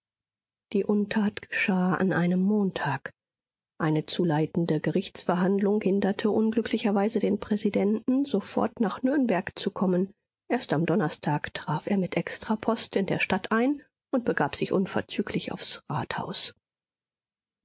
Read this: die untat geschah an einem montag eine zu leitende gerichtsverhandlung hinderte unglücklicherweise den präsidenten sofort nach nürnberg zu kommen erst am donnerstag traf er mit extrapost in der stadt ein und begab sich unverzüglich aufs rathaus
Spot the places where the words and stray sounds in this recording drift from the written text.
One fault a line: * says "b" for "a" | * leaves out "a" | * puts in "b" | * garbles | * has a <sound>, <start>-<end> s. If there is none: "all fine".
all fine